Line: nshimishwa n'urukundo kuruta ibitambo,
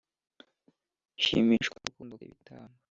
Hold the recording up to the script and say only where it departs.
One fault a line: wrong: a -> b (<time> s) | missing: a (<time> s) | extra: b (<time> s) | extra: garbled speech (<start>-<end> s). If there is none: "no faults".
missing: kuruta (2.1 s)